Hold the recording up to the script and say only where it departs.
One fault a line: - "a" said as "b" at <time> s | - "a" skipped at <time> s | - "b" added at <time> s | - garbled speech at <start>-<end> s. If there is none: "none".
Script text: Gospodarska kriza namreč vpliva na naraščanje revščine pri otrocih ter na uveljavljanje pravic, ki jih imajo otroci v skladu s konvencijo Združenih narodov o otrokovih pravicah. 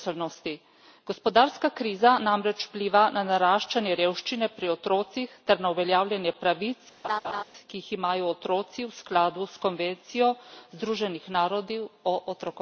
none